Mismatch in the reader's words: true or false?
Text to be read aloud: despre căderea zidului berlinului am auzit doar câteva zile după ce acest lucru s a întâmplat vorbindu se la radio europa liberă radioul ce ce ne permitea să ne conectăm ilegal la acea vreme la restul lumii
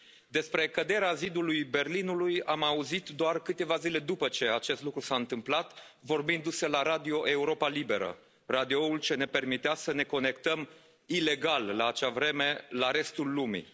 true